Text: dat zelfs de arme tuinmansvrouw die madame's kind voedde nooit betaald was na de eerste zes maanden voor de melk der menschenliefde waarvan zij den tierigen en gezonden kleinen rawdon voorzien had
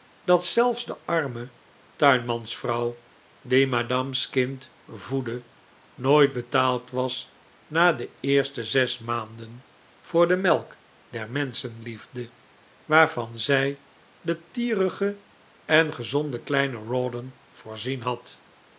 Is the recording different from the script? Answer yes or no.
no